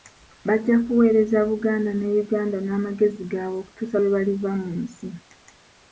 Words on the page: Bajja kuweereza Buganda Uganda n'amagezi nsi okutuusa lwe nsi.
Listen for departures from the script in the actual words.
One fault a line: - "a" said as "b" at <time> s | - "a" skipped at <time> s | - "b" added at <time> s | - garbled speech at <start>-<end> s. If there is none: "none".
- "ne" added at 1.9 s
- "nsi" said as "gaabwe" at 3.3 s
- "baliva mu" added at 4.2 s